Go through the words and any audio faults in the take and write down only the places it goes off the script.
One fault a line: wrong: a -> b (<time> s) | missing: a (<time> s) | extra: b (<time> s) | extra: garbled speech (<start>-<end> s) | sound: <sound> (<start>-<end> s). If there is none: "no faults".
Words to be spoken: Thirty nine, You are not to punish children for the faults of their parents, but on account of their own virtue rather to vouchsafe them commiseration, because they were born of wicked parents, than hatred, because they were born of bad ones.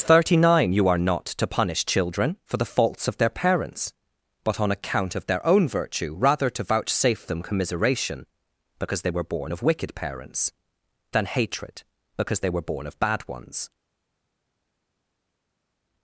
no faults